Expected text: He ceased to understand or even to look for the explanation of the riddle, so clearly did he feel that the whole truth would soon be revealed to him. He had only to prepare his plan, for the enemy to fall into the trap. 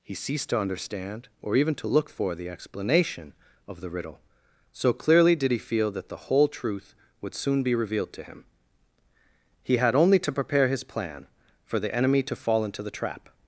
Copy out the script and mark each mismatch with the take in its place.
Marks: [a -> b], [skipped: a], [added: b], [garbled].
He ceased to understand or even to look for the explanation of the riddle, so clearly did he feel that the whole truth would soon be revealed to him. He had only to prepare his plan, for the enemy to fall into the trap.